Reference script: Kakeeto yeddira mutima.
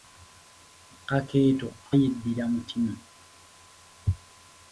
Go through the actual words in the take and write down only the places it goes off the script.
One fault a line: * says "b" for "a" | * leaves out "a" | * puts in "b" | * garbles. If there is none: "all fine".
all fine